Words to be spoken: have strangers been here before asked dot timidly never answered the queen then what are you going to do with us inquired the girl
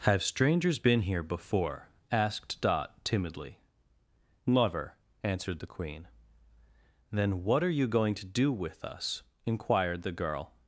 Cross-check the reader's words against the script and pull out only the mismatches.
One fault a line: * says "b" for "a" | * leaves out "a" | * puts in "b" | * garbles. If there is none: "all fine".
all fine